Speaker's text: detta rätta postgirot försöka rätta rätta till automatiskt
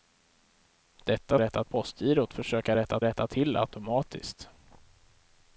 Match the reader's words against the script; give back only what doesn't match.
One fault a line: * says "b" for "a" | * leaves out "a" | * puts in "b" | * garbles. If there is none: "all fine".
all fine